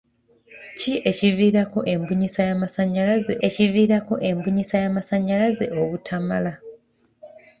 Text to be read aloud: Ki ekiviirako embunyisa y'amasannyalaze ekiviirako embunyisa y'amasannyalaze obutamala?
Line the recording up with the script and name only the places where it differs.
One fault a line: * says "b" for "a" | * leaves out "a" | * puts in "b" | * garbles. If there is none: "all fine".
all fine